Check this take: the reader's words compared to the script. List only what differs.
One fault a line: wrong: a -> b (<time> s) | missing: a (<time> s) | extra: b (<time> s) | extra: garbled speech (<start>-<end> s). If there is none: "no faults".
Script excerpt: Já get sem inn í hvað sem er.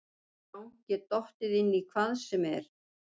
wrong: sem -> dottið (1.1 s)